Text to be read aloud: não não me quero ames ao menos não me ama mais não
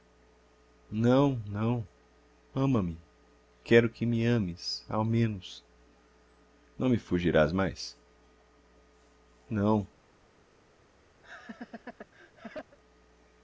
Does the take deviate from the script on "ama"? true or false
true